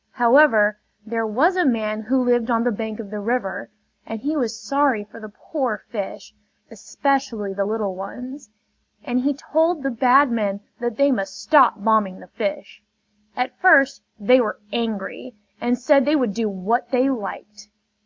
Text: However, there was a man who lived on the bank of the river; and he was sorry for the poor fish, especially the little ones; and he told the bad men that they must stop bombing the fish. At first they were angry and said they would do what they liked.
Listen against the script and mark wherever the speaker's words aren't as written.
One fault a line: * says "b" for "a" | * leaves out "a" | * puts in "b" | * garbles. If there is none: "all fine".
all fine